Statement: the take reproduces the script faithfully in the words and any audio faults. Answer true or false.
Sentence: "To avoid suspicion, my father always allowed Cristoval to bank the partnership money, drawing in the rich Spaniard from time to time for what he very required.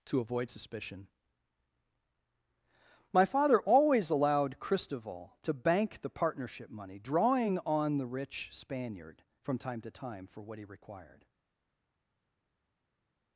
false